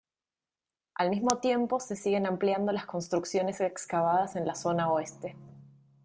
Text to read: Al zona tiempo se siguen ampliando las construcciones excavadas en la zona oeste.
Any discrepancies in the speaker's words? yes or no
yes